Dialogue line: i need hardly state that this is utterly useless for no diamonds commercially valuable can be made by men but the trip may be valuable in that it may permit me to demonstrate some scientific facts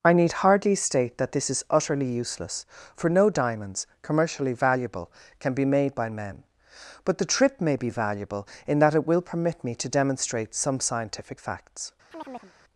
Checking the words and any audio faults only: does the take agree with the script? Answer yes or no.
no